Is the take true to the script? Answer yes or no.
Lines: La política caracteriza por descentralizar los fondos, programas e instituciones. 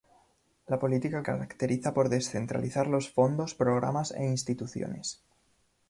yes